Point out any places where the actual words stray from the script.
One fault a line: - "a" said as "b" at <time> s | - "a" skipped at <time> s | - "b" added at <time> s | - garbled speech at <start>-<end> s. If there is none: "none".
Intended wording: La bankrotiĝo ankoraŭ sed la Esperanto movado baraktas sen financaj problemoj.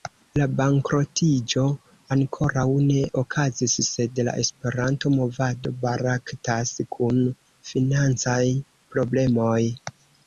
- "ne okazis" added at 2.9 s
- "sen" said as "kun" at 7.0 s